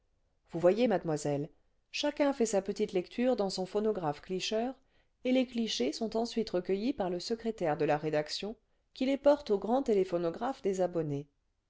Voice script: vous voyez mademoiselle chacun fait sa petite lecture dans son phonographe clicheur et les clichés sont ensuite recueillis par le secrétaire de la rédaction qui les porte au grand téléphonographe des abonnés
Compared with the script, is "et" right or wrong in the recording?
right